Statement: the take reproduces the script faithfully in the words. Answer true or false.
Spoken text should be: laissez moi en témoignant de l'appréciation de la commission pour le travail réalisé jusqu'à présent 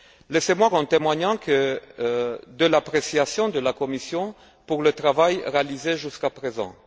true